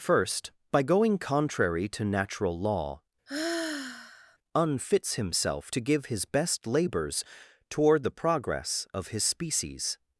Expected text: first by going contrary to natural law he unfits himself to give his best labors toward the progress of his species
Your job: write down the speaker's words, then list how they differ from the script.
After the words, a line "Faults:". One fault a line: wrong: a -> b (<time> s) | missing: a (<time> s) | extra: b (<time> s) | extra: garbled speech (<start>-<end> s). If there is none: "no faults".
first by going contrary to natural law unfits himself to give his best labors toward the progress of his species
Faults:
missing: he (3.0 s)